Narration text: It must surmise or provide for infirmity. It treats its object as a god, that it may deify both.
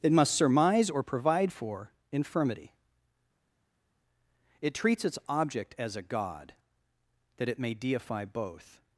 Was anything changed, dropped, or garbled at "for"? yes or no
no